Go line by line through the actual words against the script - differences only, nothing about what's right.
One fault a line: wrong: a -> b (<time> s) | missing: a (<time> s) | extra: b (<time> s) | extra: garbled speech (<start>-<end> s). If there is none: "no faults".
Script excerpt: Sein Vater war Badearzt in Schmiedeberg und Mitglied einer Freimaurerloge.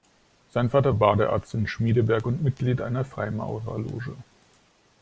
missing: war (0.9 s)